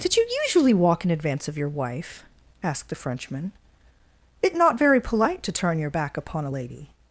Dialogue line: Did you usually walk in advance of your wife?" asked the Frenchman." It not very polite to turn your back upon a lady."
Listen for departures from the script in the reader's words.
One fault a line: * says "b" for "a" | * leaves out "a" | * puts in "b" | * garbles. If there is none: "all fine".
all fine